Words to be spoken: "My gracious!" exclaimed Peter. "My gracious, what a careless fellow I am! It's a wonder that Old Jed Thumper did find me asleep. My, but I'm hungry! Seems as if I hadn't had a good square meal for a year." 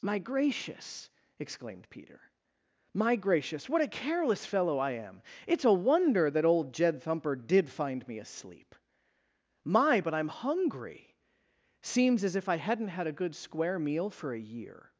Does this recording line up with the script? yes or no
yes